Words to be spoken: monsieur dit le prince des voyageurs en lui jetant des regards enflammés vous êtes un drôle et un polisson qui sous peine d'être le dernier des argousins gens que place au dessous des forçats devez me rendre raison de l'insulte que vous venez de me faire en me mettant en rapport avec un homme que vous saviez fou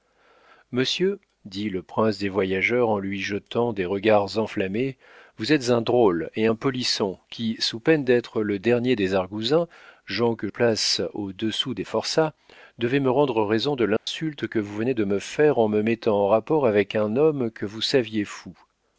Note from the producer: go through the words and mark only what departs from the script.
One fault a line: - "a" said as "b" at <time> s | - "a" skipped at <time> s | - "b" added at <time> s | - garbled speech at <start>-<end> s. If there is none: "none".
none